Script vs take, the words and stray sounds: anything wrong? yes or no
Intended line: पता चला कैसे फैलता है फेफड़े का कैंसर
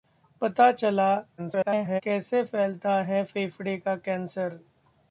yes